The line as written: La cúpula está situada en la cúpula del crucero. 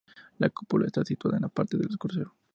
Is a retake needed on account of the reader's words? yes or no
yes